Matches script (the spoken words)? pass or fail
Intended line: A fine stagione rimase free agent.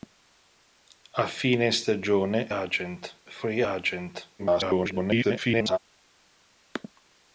fail